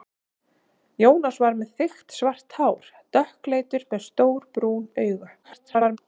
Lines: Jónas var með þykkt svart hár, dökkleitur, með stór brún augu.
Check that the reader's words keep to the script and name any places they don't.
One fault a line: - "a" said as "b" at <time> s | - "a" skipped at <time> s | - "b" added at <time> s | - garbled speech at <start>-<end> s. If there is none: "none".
- garbled speech at 5.4-6.0 s